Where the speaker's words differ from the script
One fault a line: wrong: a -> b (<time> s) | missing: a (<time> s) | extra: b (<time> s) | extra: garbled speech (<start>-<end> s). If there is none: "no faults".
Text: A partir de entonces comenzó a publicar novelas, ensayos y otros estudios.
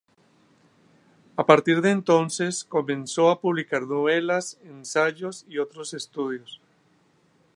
no faults